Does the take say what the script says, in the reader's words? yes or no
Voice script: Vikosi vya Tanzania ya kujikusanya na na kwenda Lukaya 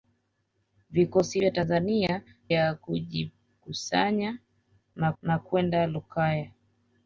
yes